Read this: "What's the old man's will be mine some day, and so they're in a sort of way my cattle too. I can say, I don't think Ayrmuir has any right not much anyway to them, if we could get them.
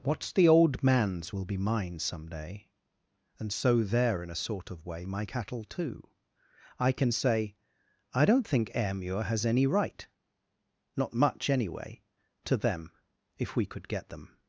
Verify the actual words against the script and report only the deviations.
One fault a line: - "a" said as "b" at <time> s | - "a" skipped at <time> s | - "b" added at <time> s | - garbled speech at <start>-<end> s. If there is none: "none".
none